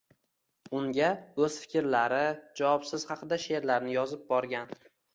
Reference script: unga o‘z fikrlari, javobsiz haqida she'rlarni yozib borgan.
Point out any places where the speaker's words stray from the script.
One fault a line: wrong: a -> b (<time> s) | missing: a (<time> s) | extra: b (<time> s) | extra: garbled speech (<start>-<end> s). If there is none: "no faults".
no faults